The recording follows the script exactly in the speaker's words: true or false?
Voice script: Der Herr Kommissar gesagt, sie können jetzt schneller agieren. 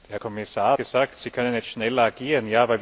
true